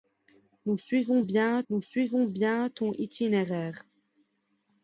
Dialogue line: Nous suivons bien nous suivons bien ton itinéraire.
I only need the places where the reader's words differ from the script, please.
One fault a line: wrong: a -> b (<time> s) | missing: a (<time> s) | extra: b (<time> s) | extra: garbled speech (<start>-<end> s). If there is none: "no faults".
no faults